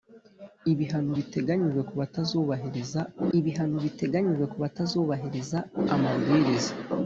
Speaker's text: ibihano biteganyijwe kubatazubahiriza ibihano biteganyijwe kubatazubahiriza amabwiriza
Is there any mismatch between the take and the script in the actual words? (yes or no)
no